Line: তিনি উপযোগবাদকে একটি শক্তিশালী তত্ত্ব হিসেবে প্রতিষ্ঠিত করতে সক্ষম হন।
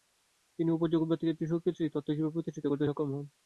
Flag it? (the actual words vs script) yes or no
no